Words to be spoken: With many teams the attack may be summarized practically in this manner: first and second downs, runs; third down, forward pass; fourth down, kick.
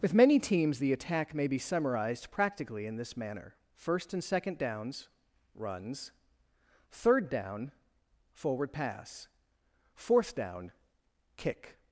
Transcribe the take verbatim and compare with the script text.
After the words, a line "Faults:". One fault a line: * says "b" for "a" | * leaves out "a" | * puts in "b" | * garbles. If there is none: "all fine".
With many teams the attack may be summarized practically in this manner: first and second downs, runs; third down, forward pass; fourth down, kick.
Faults:
all fine